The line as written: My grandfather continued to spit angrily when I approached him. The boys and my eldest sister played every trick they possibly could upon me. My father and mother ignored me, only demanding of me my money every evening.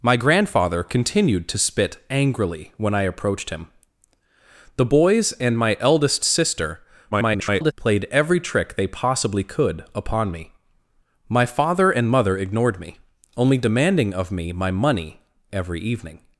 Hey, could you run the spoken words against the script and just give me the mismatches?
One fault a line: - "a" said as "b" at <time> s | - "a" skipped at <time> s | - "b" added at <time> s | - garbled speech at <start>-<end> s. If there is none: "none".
- garbled speech at 7.1-7.7 s